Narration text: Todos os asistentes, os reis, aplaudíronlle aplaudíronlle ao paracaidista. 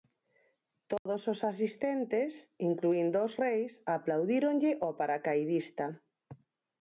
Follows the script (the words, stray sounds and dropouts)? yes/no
no